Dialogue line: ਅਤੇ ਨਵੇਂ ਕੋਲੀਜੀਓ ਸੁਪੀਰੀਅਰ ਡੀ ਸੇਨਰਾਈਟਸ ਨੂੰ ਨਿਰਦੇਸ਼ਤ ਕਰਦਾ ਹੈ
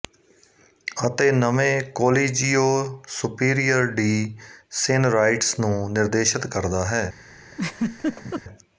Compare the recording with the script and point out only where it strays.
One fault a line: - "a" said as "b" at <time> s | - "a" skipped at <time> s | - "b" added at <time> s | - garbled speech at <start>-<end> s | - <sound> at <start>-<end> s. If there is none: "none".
- laugh at 7.5-8.4 s